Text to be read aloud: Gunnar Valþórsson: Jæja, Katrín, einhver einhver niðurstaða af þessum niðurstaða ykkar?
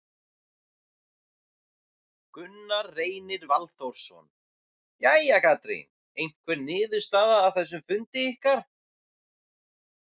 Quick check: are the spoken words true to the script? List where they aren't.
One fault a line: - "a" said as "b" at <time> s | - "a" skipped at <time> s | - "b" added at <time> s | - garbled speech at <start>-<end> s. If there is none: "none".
- "Reynir" added at 3.0 s
- "einhver" skipped at 6.6 s
- "niðurstaða" said as "fundi" at 7.9 s